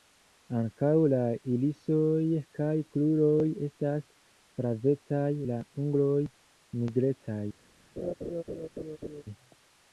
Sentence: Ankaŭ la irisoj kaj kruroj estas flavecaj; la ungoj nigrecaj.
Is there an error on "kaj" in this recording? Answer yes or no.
no